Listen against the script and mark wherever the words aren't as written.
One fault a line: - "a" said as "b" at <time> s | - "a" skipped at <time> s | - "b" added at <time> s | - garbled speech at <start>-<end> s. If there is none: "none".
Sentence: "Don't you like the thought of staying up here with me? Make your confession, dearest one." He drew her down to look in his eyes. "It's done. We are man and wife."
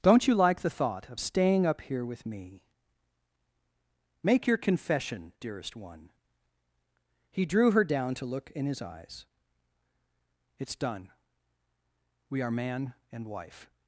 none